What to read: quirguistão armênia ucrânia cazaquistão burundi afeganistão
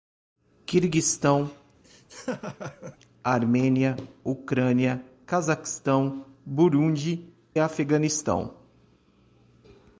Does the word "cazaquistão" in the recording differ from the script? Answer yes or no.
no